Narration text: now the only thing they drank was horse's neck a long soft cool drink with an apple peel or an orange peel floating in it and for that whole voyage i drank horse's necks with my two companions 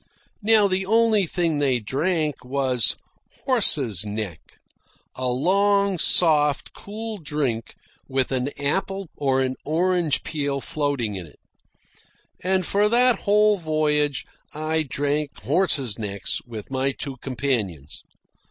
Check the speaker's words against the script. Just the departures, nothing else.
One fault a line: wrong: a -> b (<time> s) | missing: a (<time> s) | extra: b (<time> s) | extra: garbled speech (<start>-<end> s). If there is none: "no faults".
missing: peel (9.1 s)